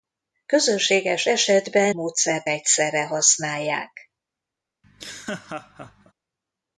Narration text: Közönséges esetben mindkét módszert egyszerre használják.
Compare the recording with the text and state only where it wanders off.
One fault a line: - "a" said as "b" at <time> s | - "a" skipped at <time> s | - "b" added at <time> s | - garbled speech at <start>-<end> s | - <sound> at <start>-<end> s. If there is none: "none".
- "mindkét" skipped at 1.9 s
- laugh at 4.8-6.1 s